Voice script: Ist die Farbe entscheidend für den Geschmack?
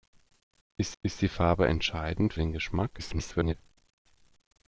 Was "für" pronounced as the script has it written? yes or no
no